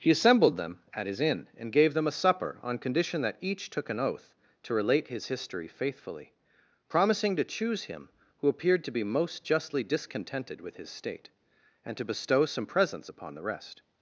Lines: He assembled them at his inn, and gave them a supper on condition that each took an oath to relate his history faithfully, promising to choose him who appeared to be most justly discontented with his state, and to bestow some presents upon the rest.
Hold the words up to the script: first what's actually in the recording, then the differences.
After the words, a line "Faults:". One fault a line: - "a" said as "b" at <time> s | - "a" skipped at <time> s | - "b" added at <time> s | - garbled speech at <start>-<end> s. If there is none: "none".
He assembled them at his inn, and gave them a supper on condition that each took an oath to relate his history faithfully, promising to choose him who appeared to be most justly discontented with his state, and to bestow some presents upon the rest.
Faults:
none